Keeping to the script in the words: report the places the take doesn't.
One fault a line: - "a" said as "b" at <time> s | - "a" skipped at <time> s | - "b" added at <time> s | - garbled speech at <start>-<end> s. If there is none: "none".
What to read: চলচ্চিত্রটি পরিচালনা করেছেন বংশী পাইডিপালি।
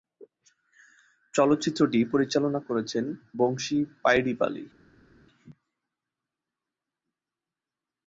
none